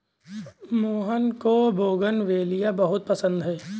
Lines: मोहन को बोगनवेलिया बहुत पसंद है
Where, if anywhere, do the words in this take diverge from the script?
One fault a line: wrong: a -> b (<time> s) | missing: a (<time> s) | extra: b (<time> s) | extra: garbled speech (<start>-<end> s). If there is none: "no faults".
no faults